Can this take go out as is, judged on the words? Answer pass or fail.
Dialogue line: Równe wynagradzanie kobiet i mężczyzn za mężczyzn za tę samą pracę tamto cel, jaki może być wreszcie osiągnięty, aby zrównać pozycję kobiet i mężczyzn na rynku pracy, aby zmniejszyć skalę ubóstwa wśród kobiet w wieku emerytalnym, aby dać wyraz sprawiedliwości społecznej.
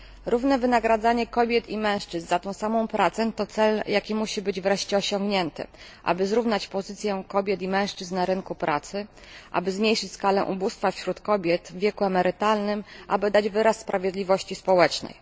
fail